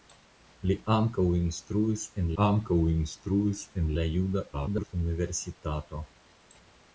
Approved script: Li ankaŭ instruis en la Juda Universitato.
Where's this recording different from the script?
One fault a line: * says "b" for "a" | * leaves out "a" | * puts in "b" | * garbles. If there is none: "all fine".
* puts in "ankaŭ instruis en"
* garbles